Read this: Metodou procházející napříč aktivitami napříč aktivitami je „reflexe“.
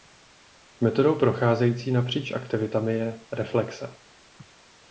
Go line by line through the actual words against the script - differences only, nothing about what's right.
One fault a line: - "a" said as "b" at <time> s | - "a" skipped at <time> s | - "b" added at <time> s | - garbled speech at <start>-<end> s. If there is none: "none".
- "napříč aktivitami" skipped at 2.9 s